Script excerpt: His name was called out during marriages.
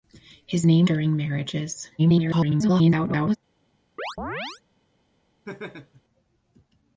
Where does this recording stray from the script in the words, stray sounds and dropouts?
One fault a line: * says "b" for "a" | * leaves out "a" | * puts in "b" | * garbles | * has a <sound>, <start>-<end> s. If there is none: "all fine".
* leaves out "was called out"
* garbles
* has a chirp, 4.0-4.6 s
* has a laugh, 5.4-6.0 s